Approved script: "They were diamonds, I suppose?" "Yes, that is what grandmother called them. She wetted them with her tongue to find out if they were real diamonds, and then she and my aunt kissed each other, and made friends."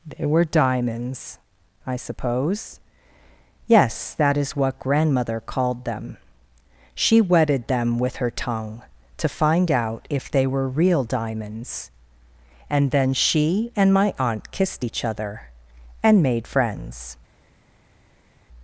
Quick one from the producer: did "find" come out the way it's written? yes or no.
yes